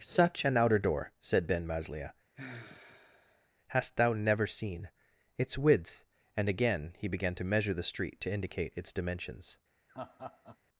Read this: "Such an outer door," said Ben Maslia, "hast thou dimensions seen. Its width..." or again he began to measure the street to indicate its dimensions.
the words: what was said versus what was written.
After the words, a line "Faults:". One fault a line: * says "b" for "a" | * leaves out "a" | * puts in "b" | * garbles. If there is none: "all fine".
"Such an outer door," said Ben Maslia, "hast thou never seen. Its width..." and again he began to measure the street to indicate its dimensions.
Faults:
* says "never" for "dimensions"
* says "and" for "or"